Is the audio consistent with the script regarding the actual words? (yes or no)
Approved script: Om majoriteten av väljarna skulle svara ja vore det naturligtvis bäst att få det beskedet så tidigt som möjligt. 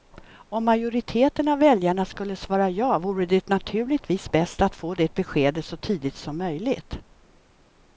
yes